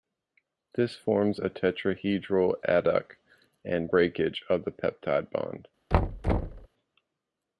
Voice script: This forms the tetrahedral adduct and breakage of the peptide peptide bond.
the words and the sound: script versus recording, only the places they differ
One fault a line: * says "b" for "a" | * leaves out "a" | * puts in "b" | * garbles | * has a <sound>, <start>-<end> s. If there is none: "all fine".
* says "a" for "the"
* leaves out "peptide"
* has a thud, 5.9-6.7 s